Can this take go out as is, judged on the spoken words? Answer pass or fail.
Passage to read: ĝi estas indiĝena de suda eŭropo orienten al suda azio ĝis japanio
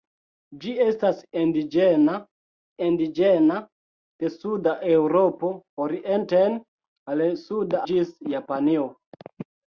fail